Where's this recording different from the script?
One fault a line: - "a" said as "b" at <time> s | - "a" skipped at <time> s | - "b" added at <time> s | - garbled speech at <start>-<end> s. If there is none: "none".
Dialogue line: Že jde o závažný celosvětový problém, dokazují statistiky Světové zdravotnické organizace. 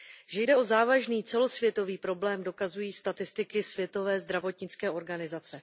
none